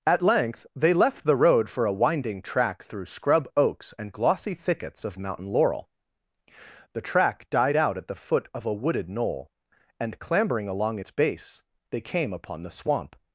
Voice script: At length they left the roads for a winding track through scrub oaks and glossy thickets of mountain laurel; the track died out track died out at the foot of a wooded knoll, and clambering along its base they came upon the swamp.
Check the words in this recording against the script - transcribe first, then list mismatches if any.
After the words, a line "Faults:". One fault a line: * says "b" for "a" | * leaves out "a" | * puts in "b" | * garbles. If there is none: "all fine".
At length they left the road for a winding track through scrub oaks and glossy thickets of mountain laurel; the track died out at the foot of a wooded knoll, and clambering along its base they came upon the swamp.
Faults:
* says "road" for "roads"
* leaves out "track died out"